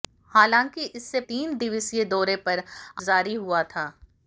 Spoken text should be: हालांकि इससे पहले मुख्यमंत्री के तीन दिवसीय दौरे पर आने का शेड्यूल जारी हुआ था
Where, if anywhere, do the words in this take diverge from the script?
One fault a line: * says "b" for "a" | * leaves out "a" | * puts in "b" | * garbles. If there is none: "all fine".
* leaves out "पहले मुख्यमंत्री के"
* leaves out "आने का शेड्यूल"